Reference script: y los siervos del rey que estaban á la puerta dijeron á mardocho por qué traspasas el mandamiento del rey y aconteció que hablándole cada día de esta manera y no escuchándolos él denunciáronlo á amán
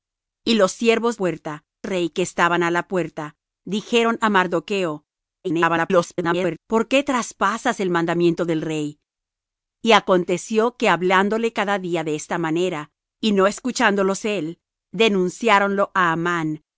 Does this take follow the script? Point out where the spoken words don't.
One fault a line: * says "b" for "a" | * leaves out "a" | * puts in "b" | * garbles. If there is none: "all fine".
* says "puerta" for "del"
* garbles